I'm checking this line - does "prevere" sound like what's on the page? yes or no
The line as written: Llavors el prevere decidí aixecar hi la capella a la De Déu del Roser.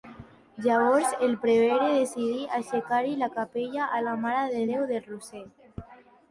yes